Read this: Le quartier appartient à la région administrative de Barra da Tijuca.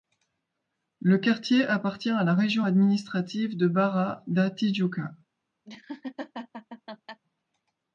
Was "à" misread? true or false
false